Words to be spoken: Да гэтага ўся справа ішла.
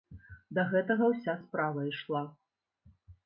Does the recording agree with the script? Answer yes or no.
yes